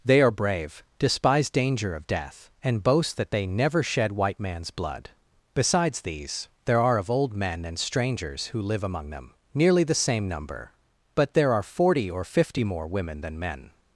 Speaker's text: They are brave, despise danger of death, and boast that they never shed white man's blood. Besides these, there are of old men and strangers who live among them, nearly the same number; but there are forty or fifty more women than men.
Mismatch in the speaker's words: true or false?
false